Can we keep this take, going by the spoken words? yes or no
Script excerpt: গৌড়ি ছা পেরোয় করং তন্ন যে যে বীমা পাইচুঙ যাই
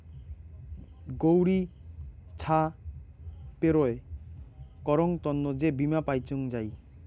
no